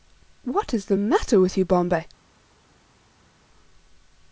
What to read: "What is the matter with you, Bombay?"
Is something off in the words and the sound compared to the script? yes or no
no